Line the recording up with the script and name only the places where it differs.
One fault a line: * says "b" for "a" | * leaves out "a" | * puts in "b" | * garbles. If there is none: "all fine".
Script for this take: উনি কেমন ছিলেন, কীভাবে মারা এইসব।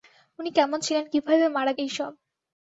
all fine